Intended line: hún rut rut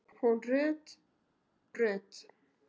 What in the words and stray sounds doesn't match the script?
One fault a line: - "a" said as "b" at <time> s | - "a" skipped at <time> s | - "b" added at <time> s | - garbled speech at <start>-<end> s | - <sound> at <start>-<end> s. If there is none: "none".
none